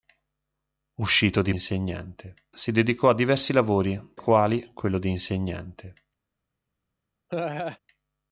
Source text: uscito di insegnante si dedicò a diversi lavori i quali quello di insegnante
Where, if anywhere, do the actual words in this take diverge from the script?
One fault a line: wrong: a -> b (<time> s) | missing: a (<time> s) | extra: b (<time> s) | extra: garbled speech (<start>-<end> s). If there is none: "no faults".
no faults